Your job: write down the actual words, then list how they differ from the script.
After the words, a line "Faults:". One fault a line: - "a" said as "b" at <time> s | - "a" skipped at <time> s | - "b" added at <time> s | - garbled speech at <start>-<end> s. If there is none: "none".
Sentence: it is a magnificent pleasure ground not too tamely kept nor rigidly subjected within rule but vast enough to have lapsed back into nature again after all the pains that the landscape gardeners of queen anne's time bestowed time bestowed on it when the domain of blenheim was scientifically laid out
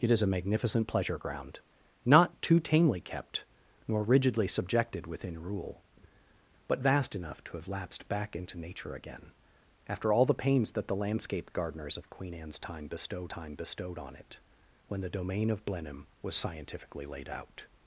it is a magnificent pleasure ground not too tamely kept nor rigidly subjected within rule but vast enough to have lapsed back into nature again after all the pains that the landscape gardeners of queen anne's time bestowed time bestowed on it when the domain of blenheim was scientifically laid out
Faults:
none